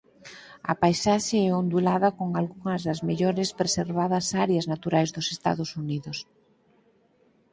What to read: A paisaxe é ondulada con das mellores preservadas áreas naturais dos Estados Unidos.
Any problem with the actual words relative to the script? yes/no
yes